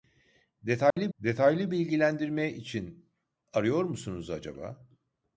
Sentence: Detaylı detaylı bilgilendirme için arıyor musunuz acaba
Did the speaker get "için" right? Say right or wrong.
right